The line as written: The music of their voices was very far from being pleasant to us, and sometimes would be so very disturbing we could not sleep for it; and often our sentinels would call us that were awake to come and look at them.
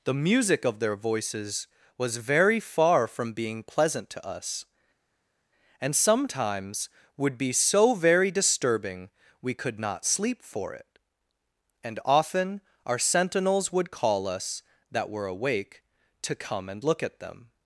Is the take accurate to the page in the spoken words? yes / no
yes